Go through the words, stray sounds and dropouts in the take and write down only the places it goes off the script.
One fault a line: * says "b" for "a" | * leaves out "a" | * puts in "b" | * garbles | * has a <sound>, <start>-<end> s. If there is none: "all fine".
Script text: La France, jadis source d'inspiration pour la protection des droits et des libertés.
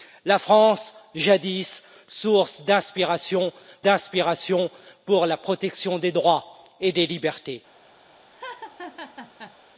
* puts in "d'inspiration"
* has a laugh, 8.3-9.6 s